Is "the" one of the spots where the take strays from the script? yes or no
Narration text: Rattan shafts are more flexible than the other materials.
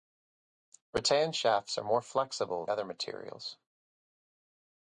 yes